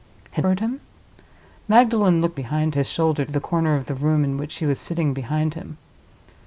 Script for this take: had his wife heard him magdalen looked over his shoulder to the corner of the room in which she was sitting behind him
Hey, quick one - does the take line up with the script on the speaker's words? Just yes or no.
no